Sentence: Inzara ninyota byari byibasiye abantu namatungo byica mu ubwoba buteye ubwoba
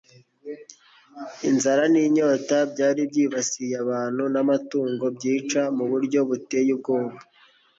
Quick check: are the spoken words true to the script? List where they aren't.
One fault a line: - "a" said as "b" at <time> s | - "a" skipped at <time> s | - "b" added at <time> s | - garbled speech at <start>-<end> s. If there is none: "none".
- "ubwoba" said as "buryo" at 5.9 s